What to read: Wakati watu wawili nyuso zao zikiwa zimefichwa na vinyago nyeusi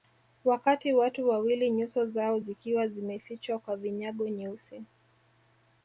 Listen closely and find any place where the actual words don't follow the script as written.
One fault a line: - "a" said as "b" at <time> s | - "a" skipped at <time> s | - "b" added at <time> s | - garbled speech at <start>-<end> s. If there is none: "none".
- "na" said as "kwa" at 3.6 s